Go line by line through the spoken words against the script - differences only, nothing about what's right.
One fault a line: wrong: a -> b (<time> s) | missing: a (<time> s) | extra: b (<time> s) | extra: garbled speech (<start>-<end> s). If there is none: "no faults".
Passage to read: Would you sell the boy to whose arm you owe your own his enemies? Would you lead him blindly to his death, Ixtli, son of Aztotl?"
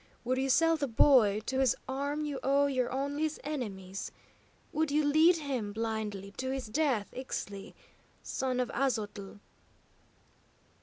no faults